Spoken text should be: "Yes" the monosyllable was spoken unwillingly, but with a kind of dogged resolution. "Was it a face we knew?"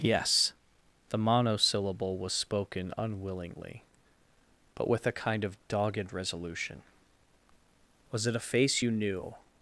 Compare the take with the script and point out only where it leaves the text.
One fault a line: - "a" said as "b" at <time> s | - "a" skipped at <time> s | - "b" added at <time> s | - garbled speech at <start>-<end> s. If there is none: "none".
- "we" said as "you" at 8.8 s